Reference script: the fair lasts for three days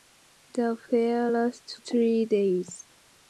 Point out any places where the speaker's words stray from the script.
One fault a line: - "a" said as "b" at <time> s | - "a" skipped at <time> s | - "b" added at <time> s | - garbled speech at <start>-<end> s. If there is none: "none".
- "for" skipped at 1.8 s